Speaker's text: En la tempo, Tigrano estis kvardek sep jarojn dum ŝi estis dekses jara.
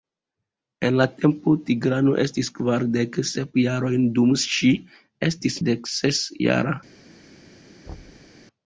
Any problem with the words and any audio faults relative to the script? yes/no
yes